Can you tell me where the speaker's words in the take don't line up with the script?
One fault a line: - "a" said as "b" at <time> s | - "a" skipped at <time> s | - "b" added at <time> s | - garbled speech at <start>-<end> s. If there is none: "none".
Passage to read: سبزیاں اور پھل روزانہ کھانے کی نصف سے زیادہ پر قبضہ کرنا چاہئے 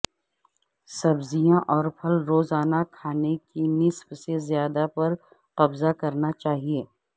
none